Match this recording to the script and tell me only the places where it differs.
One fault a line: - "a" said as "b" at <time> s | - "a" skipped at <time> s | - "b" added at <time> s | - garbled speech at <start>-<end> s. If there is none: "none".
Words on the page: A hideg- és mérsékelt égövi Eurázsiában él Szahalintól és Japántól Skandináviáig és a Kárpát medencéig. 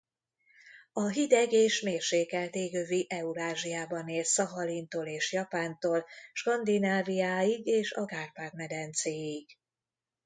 none